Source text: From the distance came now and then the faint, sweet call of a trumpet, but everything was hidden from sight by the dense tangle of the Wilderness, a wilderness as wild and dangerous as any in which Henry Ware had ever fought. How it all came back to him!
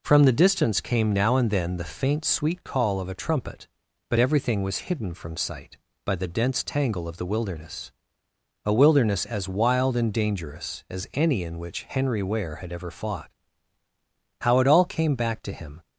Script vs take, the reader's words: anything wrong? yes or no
no